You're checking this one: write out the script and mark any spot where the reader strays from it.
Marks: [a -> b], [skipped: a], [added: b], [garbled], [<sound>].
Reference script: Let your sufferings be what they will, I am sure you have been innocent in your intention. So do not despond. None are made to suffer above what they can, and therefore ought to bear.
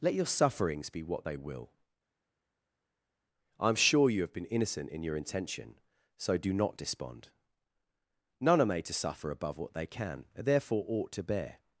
Let your sufferings be what they will, I am sure you have been innocent in your intention. So do not despond. None are made to suffer above what they can, and therefore ought to bear.